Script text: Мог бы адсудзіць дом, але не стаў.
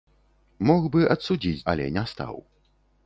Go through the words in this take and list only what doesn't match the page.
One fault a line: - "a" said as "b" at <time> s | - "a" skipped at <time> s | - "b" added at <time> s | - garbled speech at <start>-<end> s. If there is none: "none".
- "дом" skipped at 1.7 s